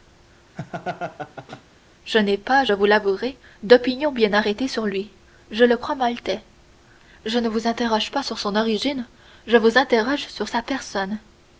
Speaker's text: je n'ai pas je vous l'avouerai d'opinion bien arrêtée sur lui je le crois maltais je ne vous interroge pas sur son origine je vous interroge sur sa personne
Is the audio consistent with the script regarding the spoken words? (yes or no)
yes